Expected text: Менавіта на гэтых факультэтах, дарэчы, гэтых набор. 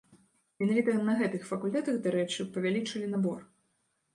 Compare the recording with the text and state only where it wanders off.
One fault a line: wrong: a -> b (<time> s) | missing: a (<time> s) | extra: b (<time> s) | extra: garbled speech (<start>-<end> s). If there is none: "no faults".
wrong: гэтых -> павялічылі (2.6 s)